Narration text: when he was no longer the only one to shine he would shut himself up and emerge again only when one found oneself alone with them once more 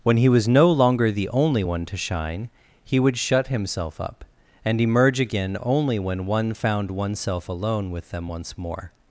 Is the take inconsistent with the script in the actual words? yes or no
no